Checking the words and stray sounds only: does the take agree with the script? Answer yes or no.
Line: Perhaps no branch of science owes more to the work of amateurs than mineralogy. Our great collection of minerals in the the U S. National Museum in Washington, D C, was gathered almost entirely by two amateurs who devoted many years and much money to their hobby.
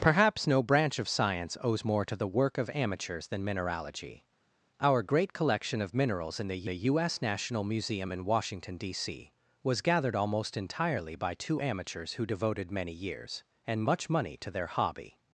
yes